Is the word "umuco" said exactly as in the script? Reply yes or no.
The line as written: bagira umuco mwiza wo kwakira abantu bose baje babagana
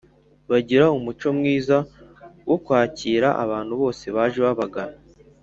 yes